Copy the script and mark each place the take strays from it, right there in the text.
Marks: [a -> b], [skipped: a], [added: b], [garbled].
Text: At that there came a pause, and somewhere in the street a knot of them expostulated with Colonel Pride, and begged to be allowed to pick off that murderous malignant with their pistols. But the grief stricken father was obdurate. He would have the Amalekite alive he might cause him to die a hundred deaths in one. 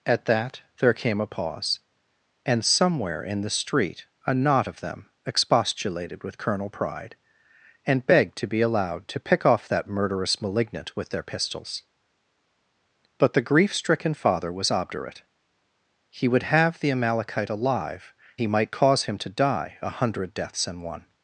At that there came a pause, and somewhere in the street a knot of them expostulated with Colonel Pride, and begged to be allowed to pick off that murderous malignant with their pistols. But the grief stricken father was obdurate. He would have the Amalekite alive he might cause him to die a hundred deaths in one.